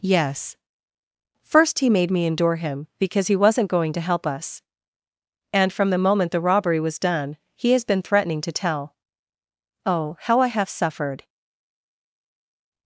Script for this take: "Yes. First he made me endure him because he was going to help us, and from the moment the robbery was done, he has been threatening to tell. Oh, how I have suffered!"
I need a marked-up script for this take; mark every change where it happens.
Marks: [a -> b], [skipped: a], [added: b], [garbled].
"Yes. First he made me endure him because he [was -> wasn't] going to help us, and from the moment the robbery was done, he has been threatening to tell. Oh, how I have suffered!"